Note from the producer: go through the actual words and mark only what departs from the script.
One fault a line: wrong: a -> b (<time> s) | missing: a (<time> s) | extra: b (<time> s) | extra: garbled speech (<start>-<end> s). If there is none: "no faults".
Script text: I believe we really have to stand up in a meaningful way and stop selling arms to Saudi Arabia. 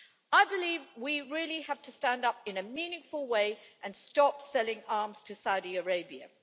no faults